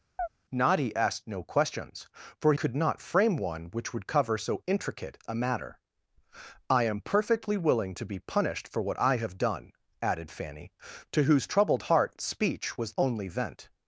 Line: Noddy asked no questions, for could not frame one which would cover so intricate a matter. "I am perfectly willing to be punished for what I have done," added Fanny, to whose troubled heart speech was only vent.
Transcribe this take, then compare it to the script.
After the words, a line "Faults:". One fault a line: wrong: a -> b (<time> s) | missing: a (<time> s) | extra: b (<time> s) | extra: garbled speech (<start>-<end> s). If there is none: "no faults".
Noddy asked no questions, for could not frame one which would cover so intricate a matter. "I am perfectly willing to be punished for what I have done," added Fanny, to whose troubled heart speech was only vent.
Faults:
no faults